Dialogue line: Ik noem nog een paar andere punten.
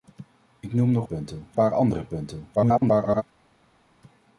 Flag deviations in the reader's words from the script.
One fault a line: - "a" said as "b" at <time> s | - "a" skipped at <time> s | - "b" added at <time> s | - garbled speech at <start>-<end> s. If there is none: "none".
- "een" said as "punten" at 1.0 s
- garbled speech at 2.6-3.2 s